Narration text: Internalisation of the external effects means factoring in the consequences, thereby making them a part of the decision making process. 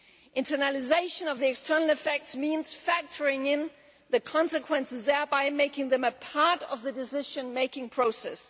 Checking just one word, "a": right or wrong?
right